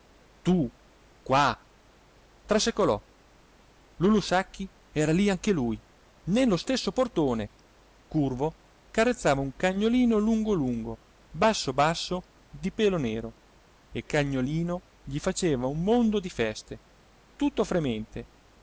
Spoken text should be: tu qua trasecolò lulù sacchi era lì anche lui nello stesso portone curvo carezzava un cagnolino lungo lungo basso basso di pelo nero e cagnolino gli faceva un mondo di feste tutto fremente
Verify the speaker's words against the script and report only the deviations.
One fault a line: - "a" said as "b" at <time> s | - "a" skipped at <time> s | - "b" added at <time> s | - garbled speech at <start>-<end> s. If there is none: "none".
none